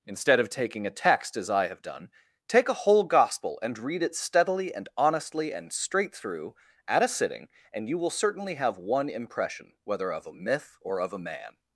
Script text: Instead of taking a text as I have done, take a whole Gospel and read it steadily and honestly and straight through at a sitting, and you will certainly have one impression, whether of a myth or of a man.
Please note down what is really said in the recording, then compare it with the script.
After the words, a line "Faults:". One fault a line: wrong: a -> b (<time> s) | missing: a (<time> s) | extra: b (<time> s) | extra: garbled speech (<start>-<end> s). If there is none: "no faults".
Instead of taking a text as I have done, take a whole Gospel and read it steadily and honestly and straight through at a sitting, and you will certainly have one impression, whether of a myth or of a man.
Faults:
no faults